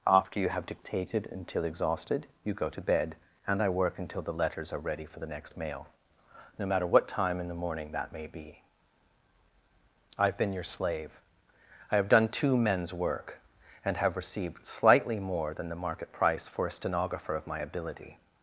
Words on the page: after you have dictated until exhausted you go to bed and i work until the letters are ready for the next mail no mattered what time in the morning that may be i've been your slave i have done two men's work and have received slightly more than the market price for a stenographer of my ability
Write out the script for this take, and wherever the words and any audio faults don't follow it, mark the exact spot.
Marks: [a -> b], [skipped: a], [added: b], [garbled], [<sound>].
after you have dictated until exhausted you go to bed and i work until the letters are ready for the next mail no [mattered -> matter] what time in the morning that may be i've been your slave i have done two men's work and have received slightly more than the market price for a stenographer of my ability